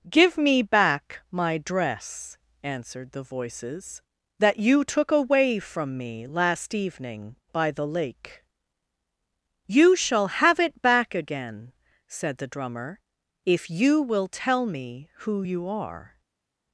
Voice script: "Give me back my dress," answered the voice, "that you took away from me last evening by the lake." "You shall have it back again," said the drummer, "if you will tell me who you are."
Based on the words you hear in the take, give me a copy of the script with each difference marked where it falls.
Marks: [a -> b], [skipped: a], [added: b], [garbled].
"Give me back my dress," answered the [voice, -> voices] "that you took away from me last evening by the lake." "You shall have it back again," said the drummer, "if you will tell me who you are."